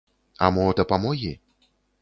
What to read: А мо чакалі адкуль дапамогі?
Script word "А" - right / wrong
right